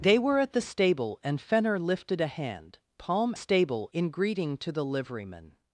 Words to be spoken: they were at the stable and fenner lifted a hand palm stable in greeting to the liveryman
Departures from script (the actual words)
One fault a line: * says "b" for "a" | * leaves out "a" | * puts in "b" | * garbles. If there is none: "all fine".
all fine